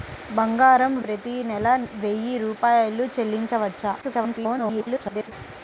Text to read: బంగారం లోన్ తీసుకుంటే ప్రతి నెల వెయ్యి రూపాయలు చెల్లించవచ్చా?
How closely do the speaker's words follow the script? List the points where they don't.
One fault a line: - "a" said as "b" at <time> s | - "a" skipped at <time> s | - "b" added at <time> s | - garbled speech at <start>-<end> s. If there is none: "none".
- "లోన్ తీసుకుంటే" skipped at 0.9 s
- garbled speech at 4.0-5.3 s